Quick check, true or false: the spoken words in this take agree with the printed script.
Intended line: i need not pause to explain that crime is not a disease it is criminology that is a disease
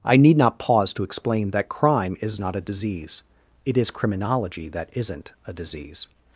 false